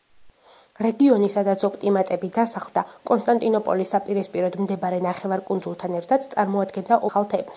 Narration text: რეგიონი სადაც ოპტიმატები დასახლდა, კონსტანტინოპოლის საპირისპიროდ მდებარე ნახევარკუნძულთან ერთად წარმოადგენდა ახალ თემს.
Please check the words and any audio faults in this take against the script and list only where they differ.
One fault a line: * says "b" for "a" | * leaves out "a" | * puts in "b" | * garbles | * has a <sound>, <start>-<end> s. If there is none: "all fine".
all fine